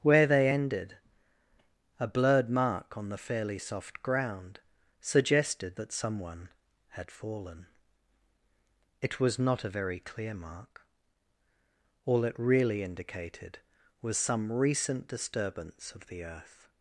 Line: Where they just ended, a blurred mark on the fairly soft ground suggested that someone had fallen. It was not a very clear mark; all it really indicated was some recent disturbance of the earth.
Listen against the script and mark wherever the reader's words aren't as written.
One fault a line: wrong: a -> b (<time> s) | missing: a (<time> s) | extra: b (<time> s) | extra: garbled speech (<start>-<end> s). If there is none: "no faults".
missing: just (0.5 s)